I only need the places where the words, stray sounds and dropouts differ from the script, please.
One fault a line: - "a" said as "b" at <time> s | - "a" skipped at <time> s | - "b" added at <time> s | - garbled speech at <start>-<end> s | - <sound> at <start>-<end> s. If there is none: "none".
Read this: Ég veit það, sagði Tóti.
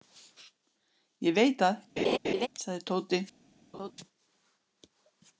- laugh at 2.0-2.5 s
- laugh at 3.7-3.9 s